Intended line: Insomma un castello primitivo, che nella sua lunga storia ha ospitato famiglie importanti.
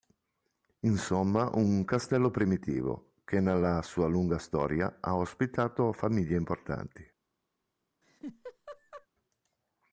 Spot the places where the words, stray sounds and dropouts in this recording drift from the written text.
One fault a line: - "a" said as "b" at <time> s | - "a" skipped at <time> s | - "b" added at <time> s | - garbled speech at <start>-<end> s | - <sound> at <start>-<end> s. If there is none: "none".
- laugh at 8.0-9.1 s